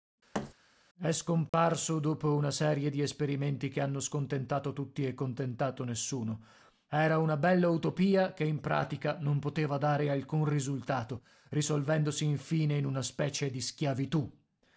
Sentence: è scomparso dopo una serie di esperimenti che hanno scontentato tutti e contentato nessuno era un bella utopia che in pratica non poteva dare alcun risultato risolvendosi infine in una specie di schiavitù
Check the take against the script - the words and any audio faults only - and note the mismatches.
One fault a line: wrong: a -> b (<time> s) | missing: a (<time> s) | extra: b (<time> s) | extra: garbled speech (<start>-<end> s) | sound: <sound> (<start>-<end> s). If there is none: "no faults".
sound: thud (0.3-0.5 s)
sound: dropout (1.5-1.5 s)
wrong: un -> una (7.2 s)